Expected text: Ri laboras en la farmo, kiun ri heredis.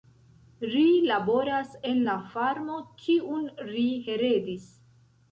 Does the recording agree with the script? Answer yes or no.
yes